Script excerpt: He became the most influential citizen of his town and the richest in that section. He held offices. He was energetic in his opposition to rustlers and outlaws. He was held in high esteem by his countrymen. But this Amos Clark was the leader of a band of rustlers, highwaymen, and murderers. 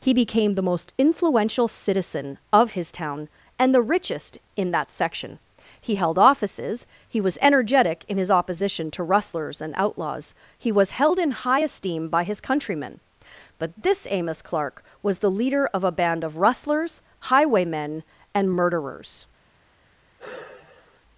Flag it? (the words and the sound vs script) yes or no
yes